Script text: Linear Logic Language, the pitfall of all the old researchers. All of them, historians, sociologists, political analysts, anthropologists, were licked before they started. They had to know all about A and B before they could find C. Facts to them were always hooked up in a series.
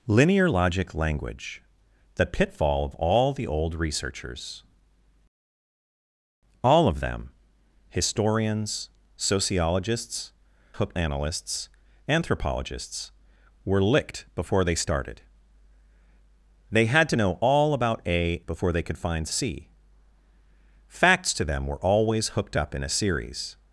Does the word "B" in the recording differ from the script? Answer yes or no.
yes